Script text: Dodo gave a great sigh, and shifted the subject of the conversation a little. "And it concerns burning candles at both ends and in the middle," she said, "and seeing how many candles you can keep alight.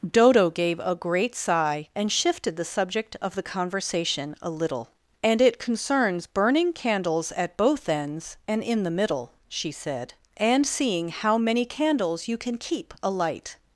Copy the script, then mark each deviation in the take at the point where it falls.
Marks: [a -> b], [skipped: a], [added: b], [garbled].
Dodo gave a great sigh, and shifted the subject of the conversation a little. "And it concerns burning candles at both ends and in the middle," she said, "and seeing how many candles you can keep alight.